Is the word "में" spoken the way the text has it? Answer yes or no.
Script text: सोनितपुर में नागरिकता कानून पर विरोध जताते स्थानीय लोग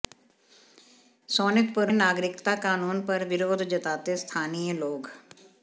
no